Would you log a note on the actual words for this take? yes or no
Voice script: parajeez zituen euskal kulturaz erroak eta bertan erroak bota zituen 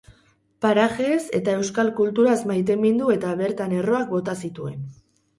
yes